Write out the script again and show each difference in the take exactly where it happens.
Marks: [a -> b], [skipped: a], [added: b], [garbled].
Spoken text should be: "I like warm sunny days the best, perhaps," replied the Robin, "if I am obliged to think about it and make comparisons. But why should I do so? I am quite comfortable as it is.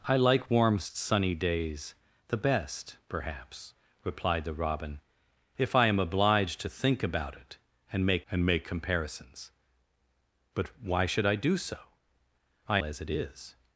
"I like warm sunny days the best, perhaps," replied the Robin, "if I am obliged to think about it and make [added: and make] comparisons. But why should I do so? I [skipped: am quite comfortable] as it is.